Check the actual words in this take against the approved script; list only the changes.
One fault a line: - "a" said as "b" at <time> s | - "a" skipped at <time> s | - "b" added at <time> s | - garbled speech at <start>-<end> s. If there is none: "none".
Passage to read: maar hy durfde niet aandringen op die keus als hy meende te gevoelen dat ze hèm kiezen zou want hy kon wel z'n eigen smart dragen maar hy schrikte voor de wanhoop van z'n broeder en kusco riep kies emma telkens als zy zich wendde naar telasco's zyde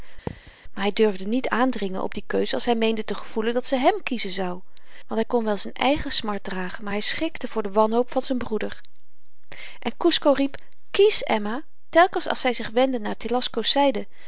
none